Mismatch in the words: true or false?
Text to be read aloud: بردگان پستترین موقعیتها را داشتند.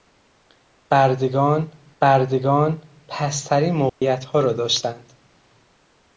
true